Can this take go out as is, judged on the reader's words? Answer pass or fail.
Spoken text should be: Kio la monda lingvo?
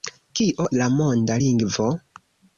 pass